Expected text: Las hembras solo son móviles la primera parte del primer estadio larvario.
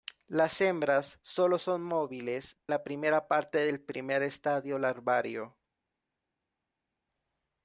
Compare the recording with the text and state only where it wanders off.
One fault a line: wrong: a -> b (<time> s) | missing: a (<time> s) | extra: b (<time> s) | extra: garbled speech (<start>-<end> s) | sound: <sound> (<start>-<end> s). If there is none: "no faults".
no faults